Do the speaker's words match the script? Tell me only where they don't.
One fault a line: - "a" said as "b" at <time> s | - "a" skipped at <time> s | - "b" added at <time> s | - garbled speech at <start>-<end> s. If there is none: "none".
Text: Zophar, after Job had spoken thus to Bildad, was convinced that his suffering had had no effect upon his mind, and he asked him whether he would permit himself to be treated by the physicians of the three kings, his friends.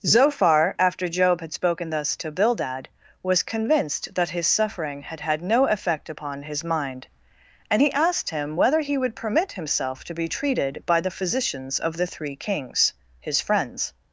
none